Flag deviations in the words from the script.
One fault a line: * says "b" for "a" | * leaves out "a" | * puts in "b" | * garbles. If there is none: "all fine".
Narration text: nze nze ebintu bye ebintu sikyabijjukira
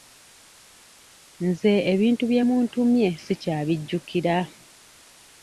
* leaves out "nze"
* says "muntumye" for "ebintu"